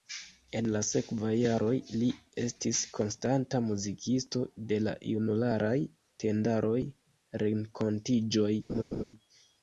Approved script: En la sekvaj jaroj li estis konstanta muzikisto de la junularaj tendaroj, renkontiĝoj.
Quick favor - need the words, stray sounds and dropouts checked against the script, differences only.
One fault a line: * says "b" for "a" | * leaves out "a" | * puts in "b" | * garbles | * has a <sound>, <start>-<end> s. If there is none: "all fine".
* has a laugh, 8.7-9.0 s